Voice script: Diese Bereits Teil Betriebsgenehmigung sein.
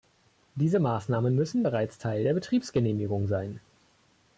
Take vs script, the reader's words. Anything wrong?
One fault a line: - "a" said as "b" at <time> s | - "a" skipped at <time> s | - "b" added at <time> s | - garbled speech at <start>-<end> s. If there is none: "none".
- "Maßnahmen müssen" added at 0.8 s
- "der" added at 2.2 s